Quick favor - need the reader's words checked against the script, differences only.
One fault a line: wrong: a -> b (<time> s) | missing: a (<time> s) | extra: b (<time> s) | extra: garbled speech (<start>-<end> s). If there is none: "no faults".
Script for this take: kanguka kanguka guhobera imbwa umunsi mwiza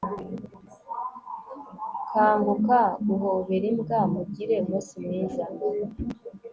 missing: kanguka (2.8 s)
extra: mugire (4.1 s)